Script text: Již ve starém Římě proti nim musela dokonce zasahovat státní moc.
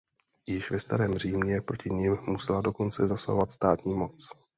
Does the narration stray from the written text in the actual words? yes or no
no